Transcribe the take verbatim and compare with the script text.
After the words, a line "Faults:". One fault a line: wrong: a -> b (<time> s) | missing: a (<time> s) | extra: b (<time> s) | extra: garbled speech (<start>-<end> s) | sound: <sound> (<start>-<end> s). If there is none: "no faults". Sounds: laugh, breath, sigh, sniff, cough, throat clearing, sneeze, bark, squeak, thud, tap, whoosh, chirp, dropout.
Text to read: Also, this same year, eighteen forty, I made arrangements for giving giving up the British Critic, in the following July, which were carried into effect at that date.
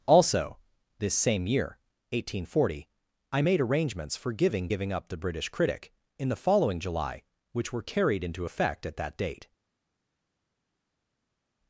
Also, this same year, eighteen forty, I made arrangements for giving giving up the British Critic, in the following July, which were carried into effect at that date.
Faults:
no faults